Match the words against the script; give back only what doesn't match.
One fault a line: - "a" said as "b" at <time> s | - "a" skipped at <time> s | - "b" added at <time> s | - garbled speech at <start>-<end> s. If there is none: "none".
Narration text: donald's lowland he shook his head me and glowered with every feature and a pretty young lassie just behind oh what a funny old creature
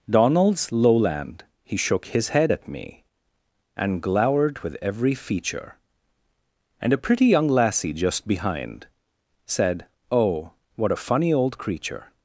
- "at" added at 2.5 s
- "said" added at 9.5 s